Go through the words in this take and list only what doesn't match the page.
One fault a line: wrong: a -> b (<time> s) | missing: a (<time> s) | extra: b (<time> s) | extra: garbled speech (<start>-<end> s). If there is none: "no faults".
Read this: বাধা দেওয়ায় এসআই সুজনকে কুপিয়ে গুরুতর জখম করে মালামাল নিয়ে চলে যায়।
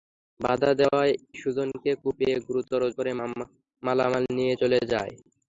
missing: এসআই (1.1 s)
missing: জখম (2.8 s)